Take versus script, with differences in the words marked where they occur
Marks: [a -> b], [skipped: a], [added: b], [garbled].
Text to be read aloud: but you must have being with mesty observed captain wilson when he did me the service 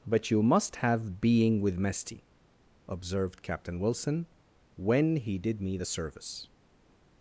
but you must have being with mesty observed captain wilson when he did me the service